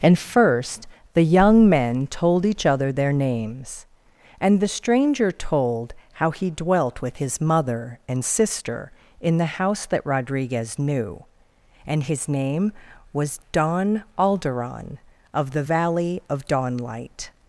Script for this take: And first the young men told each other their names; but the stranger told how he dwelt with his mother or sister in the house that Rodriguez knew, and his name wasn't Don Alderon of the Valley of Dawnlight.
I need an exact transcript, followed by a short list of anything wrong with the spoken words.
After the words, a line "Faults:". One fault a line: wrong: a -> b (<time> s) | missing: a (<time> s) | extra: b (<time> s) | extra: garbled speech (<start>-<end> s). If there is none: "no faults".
And first the young men told each other their names; and the stranger told how he dwelt with his mother and sister in the house that Rodriguez knew, and his name was Don Alderon of the Valley of Dawnlight.
Faults:
wrong: but -> and (4.4 s)
wrong: or -> and (8.1 s)
wrong: wasn't -> was (13.1 s)